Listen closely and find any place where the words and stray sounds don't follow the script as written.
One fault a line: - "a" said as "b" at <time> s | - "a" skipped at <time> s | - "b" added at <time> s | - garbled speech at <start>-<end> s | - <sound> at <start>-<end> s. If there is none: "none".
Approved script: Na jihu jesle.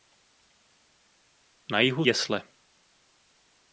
none